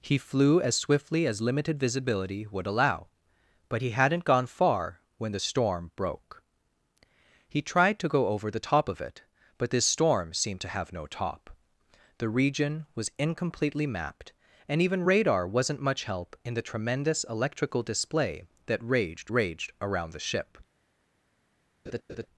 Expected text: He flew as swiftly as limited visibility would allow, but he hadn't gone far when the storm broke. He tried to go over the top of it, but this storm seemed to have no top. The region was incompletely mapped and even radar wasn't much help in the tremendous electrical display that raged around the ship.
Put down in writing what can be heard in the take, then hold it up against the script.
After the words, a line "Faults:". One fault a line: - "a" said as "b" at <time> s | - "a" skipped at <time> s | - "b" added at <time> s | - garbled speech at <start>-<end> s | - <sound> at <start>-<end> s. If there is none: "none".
He flew as swiftly as limited visibility would allow, but he hadn't gone far when the storm broke. He tried to go over the top of it, but this storm seemed to have no top. The region was incompletely mapped and even radar wasn't much help in the tremendous electrical display that raged raged around the ship.
Faults:
- "raged" added at 19.3 s
- laugh at 21.9-22.3 s